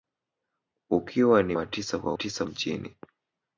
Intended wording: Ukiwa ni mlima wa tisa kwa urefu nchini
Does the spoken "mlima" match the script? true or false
false